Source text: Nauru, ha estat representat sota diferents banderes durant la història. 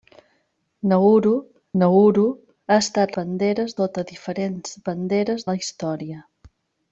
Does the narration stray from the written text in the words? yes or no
yes